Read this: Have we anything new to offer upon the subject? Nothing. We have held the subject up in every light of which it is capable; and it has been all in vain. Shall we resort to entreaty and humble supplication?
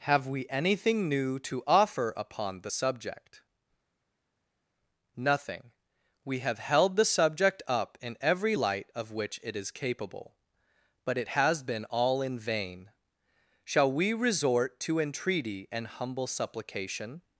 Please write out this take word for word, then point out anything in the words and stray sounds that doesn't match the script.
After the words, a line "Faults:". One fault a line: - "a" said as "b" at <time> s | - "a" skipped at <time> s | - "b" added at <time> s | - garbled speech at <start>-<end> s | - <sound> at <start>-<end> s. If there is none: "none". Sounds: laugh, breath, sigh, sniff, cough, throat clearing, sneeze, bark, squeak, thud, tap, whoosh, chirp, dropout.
Have we anything new to offer upon the subject? Nothing. We have held the subject up in every light of which it is capable; but it has been all in vain. Shall we resort to entreaty and humble supplication?
Faults:
- "and" said as "but" at 11.0 s